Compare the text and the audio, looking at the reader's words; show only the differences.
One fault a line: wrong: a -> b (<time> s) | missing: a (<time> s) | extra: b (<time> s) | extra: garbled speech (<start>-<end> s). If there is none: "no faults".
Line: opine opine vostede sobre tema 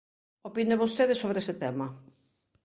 missing: opine (0.8 s)
extra: ese (1.4 s)